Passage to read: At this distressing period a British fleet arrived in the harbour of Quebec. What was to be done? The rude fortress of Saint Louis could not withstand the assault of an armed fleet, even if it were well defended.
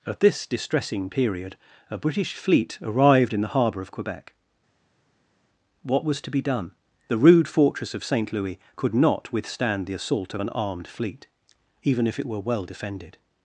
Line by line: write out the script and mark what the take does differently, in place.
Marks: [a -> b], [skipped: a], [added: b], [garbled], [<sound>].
At this distressing period a British fleet arrived in the harbour of Quebec. What was to be done? The rude fortress of Saint Louis could not withstand the assault of an armed fleet, even if it were well defended.